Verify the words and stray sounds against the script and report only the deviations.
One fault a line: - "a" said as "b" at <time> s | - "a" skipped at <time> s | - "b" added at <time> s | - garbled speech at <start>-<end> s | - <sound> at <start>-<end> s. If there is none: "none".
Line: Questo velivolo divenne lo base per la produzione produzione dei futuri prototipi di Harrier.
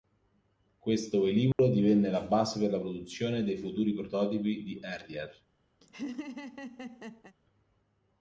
- dropout at 1.5-1.6 s
- "lo" said as "la" at 2.1 s
- "produzione" skipped at 3.4 s
- laugh at 5.8-7.4 s